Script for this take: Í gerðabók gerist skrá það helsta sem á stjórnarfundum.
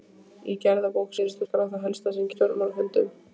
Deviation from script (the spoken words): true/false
false